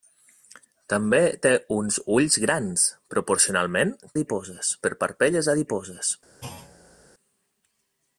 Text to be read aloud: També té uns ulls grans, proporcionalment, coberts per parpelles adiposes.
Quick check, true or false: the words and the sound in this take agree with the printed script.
false